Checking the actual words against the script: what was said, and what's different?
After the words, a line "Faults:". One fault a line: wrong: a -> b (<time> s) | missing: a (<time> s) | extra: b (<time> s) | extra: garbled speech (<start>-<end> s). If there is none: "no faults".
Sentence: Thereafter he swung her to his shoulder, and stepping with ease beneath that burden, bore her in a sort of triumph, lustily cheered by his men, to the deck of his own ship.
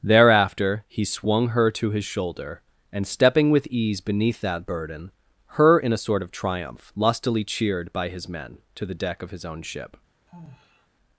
Thereafter he swung her to his shoulder, and stepping with ease beneath that burden, her in a sort of triumph, lustily cheered by his men, to the deck of his own ship.
Faults:
missing: bore (5.1 s)